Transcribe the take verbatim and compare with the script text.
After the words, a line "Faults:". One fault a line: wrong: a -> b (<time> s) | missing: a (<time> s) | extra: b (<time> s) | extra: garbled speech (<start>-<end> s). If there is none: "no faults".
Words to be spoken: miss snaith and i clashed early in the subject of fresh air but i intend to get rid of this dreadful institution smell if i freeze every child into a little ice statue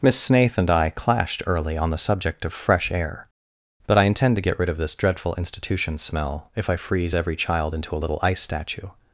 miss snaith and i clashed early on the subject of fresh air but i intend to get rid of this dreadful institution smell if i freeze every child into a little ice statue
Faults:
wrong: in -> on (1.8 s)